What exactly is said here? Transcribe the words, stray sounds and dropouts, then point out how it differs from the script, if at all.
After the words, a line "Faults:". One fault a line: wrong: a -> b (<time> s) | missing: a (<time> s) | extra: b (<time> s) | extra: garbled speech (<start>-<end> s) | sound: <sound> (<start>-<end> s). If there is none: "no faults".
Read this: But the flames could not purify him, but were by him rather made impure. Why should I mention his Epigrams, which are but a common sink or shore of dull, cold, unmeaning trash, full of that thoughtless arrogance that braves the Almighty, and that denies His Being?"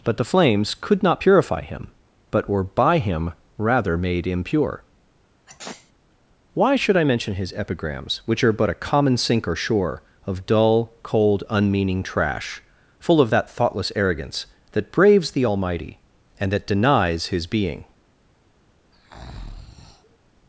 But the flames could not purify him, but were by him rather made impure. Why should I mention his Epigrams, which are but a common sink or shore of dull, cold, unmeaning trash, full of that thoughtless arrogance that braves the Almighty, and that denies His Being?"
Faults:
sound: sneeze (5.5-5.9 s)
sound: breath (18.9-20.2 s)